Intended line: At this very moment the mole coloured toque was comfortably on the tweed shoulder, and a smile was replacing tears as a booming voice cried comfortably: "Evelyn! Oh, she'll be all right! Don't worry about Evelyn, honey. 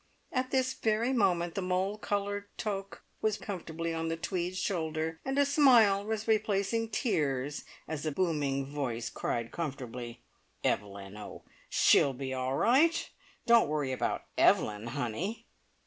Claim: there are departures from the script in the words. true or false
false